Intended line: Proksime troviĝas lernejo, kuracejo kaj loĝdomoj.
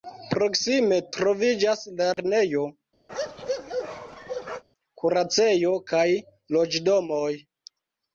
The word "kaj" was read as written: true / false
true